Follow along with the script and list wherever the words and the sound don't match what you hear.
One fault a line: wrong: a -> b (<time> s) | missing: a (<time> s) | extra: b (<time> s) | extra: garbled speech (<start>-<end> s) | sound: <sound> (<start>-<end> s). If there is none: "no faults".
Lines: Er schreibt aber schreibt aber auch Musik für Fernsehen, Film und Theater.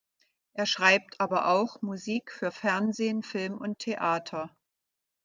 missing: schreibt aber (1.5 s)